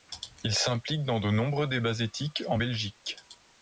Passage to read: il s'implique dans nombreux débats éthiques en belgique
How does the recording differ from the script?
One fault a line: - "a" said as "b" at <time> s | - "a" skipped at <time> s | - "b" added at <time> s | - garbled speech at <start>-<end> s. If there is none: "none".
- "de" added at 1.2 s